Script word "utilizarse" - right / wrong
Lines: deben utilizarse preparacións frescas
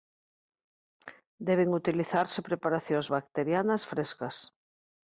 right